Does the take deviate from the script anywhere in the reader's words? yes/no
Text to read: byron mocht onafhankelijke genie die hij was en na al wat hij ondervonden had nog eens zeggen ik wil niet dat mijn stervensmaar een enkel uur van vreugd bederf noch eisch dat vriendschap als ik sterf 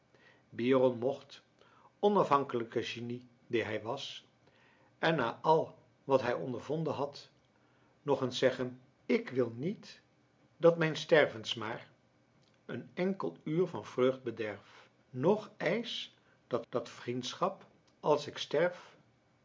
yes